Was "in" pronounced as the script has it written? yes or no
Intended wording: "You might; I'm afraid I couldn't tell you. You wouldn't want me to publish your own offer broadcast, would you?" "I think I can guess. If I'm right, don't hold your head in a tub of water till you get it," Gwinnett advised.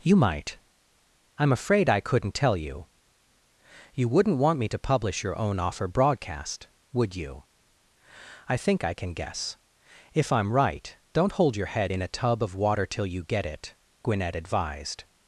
yes